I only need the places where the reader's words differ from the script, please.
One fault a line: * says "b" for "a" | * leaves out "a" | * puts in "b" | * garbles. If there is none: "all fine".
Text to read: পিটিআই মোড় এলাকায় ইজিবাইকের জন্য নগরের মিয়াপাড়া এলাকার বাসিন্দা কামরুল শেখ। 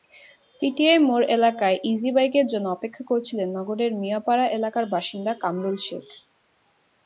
* puts in "অপেক্ষা করছিলেন"